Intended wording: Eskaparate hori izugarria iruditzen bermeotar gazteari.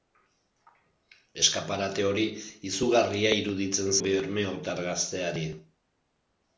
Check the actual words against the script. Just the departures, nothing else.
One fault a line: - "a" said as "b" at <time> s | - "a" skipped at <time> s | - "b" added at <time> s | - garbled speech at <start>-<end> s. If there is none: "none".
none